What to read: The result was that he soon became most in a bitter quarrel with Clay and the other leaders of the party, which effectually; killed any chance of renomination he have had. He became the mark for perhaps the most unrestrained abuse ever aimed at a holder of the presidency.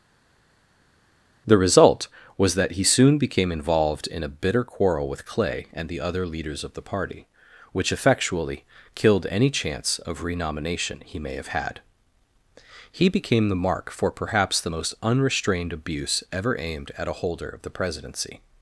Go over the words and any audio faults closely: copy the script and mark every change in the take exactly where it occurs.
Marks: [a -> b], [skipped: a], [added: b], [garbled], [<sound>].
The result was that he soon became [most -> involved] in a bitter quarrel with Clay and the other leaders of the party, which effectually; killed any chance of renomination he [added: may] have had. He became the mark for perhaps the most unrestrained abuse ever aimed at a holder of the presidency.